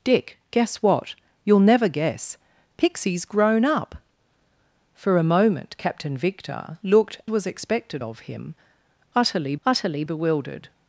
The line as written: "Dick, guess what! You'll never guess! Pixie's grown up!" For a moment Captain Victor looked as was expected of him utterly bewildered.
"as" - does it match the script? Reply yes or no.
no